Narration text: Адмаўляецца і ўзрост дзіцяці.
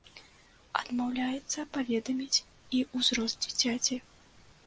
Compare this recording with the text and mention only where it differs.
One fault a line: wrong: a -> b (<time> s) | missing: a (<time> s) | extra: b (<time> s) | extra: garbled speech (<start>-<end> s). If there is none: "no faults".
extra: паведаміць (1.8 s)